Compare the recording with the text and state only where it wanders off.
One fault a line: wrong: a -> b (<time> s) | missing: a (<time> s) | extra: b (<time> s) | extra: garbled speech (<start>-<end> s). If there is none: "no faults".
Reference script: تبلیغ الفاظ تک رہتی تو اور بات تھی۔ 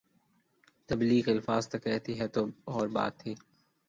no faults